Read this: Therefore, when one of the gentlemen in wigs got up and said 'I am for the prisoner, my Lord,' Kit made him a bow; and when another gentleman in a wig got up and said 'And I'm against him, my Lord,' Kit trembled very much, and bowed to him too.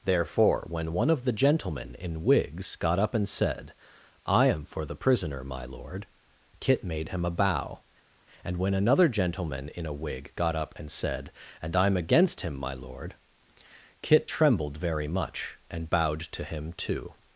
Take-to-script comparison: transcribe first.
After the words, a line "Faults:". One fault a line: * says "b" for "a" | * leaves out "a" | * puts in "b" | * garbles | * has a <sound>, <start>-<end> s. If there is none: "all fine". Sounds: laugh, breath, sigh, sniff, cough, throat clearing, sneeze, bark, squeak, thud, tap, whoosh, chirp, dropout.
Therefore, when one of the gentlemen in wigs got up and said 'I am for the prisoner, my Lord,' Kit made him a bow; and when another gentleman in a wig got up and said 'And I'm against him, my Lord,' Kit trembled very much, and bowed to him too.
Faults:
all fine